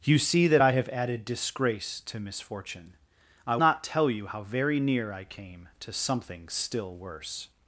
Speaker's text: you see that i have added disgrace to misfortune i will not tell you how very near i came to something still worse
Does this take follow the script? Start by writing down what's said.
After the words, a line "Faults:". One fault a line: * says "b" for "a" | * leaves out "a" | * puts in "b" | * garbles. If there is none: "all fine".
you see that i have added disgrace to misfortune i not tell you how very near i came to something still worse
Faults:
* leaves out "will"